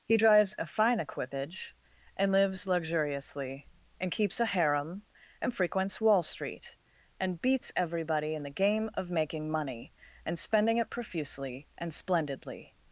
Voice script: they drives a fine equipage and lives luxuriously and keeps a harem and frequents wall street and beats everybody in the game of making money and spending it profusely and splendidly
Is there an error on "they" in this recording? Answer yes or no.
yes